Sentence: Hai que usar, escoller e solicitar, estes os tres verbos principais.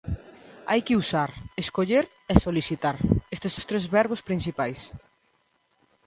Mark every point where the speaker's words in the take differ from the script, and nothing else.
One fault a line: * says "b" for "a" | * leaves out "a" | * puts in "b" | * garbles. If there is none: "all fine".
all fine